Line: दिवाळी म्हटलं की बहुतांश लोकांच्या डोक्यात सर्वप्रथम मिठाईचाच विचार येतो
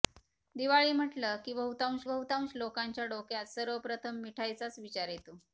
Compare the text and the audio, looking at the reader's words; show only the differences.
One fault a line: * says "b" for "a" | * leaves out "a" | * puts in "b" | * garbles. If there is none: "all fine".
* puts in "बहुतांश"